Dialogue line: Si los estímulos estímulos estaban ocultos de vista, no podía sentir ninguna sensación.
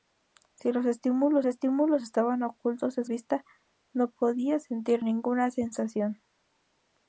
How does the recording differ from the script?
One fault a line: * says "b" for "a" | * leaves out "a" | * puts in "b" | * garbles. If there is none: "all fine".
all fine